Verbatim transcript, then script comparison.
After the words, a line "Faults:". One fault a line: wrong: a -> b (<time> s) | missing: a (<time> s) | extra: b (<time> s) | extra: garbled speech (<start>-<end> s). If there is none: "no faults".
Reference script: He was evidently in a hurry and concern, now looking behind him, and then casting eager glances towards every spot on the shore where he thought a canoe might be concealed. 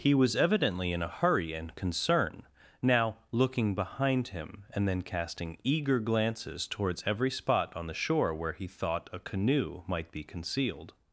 He was evidently in a hurry and concern, now looking behind him, and then casting eager glances towards every spot on the shore where he thought a canoe might be concealed.
Faults:
no faults